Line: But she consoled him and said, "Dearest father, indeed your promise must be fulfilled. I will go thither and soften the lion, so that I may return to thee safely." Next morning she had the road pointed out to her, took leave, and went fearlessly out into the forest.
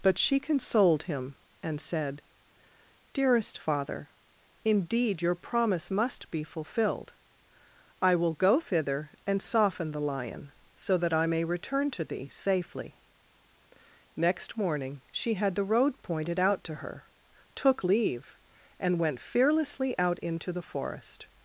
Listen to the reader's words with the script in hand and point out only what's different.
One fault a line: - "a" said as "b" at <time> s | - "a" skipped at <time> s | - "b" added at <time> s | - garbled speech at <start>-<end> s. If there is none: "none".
none